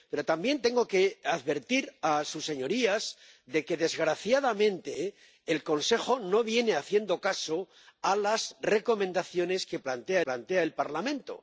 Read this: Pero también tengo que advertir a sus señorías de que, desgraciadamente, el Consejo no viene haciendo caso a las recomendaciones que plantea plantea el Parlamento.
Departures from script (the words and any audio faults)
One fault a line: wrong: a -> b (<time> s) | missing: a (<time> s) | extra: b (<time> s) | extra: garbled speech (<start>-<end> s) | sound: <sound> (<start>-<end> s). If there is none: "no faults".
no faults